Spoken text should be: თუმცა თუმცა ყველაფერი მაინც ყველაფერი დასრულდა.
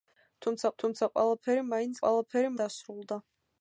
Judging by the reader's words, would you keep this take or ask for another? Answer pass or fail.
pass